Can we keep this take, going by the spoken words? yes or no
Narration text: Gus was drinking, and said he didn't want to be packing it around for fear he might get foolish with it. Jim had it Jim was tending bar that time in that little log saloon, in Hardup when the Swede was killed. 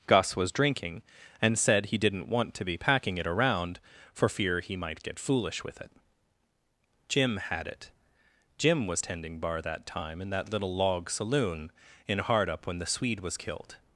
yes